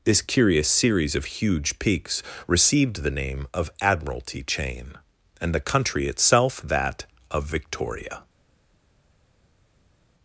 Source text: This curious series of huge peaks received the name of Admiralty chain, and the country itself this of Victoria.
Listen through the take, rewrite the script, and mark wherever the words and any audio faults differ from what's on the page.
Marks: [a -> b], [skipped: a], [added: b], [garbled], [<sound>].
This curious series of huge peaks received the name of Admiralty chain, and the country itself [this -> that] of Victoria.